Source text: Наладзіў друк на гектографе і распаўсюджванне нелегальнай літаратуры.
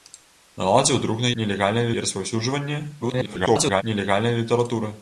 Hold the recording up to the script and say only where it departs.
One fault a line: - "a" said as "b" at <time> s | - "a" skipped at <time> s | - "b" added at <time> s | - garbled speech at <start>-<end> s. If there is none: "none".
- "гектографе" said as "нелегальнай" at 1.4 s
- garbled speech at 3.0-3.8 s